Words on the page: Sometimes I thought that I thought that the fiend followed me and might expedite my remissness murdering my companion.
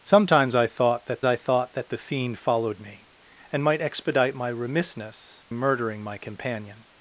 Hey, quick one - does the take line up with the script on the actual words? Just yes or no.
yes